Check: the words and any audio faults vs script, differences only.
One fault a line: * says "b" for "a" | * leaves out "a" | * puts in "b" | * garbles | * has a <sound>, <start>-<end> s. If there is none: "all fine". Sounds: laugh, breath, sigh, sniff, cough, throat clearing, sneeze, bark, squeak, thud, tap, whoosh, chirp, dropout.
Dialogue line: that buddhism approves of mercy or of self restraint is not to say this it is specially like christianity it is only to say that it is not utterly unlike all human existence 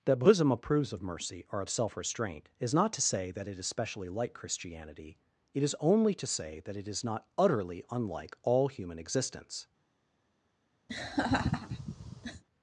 * says "that" for "this"
* has a laugh, 10.9-12.4 s